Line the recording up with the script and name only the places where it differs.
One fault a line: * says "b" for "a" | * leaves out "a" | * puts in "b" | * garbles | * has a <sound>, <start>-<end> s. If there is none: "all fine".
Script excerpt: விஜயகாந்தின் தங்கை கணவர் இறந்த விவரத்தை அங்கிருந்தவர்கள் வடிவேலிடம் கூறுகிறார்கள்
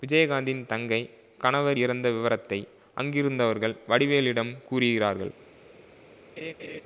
* has a laugh, 6.4-6.8 s